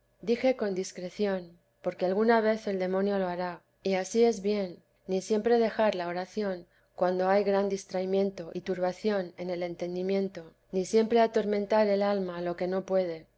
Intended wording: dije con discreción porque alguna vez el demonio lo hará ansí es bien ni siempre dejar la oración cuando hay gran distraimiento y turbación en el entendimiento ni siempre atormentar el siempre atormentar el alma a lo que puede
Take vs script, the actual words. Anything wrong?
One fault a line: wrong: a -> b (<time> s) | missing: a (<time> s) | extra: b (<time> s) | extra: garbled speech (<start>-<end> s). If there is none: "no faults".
extra: y (3.8 s)
missing: siempre atormentar el (12.0 s)
extra: no (12.7 s)